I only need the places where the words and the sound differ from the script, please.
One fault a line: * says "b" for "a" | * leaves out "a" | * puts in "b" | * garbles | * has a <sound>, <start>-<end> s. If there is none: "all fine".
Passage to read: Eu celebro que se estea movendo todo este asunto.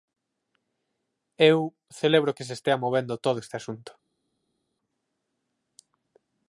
all fine